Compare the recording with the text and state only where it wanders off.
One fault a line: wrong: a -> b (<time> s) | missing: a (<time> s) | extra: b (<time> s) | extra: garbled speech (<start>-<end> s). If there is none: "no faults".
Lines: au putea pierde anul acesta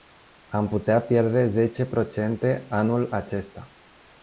wrong: au -> am (0.5 s)
extra: zece procente (1.5 s)